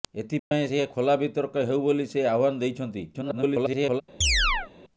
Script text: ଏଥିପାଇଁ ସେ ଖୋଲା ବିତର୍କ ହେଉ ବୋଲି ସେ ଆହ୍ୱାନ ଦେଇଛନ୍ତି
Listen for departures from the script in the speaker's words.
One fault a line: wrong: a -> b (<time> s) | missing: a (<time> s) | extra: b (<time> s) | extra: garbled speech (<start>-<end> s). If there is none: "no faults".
extra: garbled speech (3.1-4.0 s)